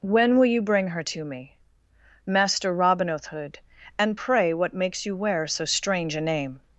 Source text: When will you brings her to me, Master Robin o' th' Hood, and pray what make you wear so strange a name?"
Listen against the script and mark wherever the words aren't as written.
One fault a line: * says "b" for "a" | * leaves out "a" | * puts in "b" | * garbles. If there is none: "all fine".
* says "bring" for "brings"
* says "makes" for "make"